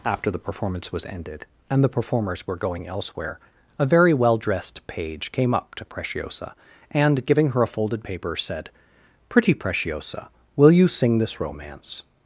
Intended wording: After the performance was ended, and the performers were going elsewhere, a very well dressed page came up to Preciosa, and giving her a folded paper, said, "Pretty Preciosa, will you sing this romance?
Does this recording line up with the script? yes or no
yes